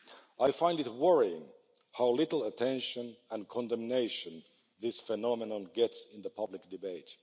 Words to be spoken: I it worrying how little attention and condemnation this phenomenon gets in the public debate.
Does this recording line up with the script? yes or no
no